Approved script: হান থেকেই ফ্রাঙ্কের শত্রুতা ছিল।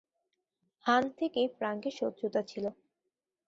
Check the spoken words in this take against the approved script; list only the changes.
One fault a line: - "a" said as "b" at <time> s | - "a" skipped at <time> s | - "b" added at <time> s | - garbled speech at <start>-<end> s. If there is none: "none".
none